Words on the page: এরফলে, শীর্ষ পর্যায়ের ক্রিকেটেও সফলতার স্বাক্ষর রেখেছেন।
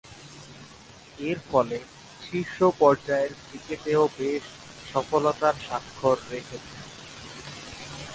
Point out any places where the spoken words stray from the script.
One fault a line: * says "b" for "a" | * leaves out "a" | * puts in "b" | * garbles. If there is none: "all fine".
* puts in "বেশ"